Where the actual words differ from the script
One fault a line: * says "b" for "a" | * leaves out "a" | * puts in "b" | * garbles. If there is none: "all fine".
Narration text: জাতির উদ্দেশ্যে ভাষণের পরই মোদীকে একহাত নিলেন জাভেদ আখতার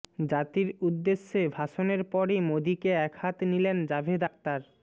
all fine